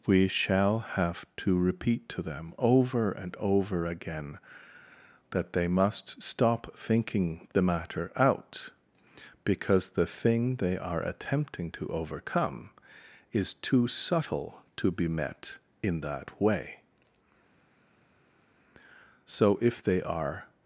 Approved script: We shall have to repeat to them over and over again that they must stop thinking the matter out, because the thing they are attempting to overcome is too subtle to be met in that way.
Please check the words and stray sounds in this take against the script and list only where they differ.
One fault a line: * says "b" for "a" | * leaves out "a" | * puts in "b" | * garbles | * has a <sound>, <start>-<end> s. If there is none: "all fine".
* puts in "So if they are"